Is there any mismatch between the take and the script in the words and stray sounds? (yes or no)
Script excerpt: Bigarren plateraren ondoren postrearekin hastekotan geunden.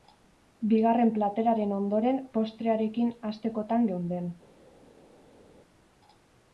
no